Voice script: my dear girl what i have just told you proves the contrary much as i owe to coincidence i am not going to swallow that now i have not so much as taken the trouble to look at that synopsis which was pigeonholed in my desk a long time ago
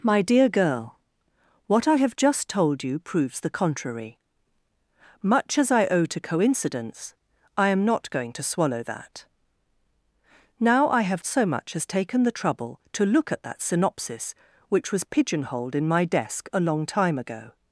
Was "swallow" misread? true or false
false